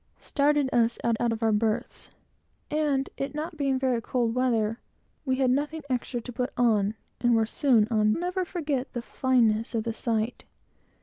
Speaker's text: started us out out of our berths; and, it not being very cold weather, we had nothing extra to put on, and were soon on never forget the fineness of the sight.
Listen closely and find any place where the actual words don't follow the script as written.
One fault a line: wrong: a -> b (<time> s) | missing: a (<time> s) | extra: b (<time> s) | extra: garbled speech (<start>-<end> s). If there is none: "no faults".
no faults